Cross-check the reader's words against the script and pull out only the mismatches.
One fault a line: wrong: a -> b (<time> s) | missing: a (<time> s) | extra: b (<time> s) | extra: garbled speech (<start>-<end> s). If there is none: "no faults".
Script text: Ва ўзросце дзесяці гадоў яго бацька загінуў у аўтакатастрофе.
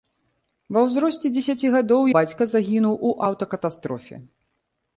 missing: яго (2.1 s)